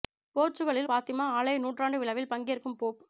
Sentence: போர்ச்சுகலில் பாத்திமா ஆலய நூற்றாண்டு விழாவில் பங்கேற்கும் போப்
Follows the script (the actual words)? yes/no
yes